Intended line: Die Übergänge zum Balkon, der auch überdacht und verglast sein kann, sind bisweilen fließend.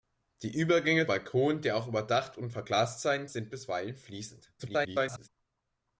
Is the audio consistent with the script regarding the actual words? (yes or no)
no